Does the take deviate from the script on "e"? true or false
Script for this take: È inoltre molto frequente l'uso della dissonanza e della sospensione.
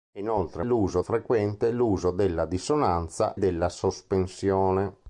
true